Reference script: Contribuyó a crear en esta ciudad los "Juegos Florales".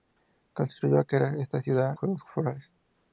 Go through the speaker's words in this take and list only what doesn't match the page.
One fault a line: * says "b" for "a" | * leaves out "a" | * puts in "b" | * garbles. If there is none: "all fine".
* leaves out "los"